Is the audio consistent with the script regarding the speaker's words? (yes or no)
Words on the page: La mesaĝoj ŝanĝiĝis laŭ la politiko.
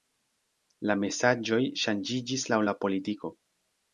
yes